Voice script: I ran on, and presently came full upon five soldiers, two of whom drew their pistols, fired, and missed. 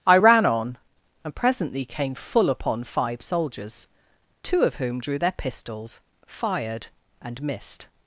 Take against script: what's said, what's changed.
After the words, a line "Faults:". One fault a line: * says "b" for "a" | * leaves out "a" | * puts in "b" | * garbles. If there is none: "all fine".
I ran on, and presently came full upon five soldiers, two of whom drew their pistols, fired, and missed.
Faults:
all fine